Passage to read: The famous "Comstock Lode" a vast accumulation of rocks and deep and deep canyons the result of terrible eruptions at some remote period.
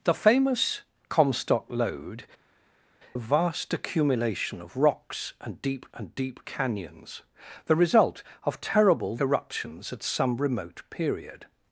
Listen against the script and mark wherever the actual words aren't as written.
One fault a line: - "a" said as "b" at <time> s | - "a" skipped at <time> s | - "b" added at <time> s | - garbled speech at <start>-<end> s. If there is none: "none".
none